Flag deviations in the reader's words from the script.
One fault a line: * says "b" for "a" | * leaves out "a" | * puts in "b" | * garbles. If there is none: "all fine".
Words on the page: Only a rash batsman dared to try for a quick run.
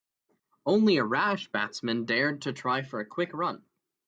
all fine